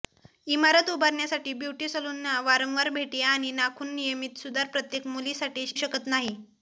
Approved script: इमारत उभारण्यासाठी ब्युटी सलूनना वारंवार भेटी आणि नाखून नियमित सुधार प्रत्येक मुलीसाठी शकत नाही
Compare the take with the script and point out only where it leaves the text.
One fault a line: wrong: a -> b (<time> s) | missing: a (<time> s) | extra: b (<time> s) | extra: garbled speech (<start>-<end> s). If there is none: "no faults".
no faults